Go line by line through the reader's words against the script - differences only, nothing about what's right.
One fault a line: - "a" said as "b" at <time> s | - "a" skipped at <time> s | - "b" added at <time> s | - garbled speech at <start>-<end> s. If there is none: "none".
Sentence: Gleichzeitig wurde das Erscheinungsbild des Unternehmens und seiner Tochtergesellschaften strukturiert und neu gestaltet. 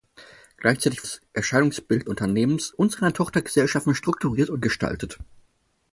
- "wurde" skipped at 1.1 s
- "des" skipped at 2.1 s
- "neu" skipped at 4.7 s